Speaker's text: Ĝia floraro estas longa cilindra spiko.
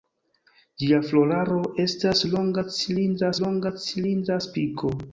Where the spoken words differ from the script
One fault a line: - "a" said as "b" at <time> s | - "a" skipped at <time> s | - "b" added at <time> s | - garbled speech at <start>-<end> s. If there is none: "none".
- "longa cilindra" added at 3.4 s